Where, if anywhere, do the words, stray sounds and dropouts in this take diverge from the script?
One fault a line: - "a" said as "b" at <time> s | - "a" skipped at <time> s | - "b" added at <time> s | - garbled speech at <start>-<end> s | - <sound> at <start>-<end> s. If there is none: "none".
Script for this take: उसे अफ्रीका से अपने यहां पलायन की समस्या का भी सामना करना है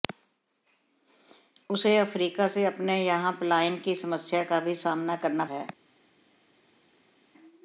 none